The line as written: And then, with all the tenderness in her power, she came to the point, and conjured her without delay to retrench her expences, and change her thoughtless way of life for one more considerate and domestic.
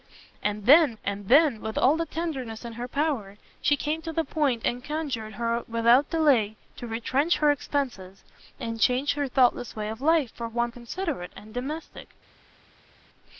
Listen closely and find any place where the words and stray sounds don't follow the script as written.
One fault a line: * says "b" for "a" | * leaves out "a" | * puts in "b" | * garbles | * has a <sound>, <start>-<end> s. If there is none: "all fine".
* puts in "and then"
* leaves out "more"